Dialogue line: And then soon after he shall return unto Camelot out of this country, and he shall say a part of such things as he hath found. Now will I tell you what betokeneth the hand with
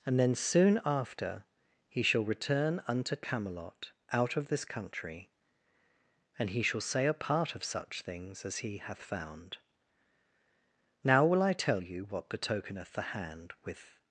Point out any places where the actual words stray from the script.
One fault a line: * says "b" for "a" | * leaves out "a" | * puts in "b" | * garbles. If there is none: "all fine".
all fine